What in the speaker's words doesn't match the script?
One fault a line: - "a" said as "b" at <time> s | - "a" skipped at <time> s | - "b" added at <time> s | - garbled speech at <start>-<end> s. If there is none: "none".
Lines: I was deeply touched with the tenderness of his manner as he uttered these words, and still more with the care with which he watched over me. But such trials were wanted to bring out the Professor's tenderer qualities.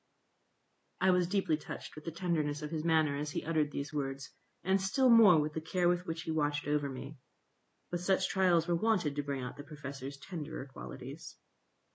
none